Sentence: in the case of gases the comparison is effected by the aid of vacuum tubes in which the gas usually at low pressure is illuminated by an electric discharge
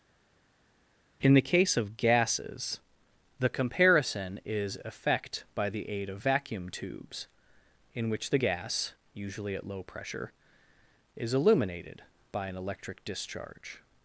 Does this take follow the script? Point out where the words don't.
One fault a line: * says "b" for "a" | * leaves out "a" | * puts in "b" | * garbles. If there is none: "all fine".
* says "effect" for "effected"